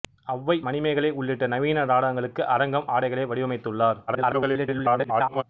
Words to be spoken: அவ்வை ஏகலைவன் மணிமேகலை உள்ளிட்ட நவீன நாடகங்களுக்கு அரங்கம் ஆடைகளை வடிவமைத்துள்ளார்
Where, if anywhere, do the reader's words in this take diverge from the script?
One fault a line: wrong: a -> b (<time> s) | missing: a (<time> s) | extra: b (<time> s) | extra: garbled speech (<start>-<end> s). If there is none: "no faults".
missing: ஏகலைவன் (0.6 s)
extra: garbled speech (4.1-5.4 s)